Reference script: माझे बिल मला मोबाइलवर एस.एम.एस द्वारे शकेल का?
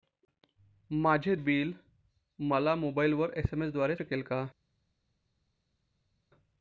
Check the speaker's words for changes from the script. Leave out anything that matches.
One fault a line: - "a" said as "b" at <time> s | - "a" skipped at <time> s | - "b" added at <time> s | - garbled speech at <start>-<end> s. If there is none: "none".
none